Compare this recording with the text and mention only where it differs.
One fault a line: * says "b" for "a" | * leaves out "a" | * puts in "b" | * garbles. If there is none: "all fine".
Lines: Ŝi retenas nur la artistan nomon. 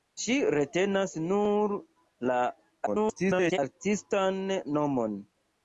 * garbles